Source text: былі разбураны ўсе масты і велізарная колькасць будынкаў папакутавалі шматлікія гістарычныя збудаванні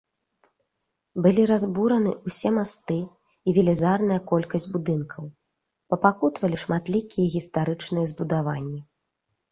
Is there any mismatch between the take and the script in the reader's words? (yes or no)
no